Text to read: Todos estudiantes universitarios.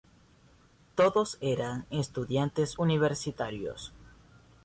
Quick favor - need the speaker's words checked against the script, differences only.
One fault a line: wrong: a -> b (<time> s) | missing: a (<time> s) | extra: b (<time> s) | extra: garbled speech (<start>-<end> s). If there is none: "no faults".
extra: eran (1.4 s)